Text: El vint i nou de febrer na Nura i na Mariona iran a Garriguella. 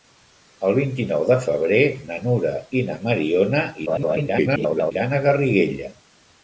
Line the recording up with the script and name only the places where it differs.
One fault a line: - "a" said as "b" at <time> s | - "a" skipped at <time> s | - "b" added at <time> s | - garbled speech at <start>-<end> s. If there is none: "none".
- garbled speech at 3.9-4.9 s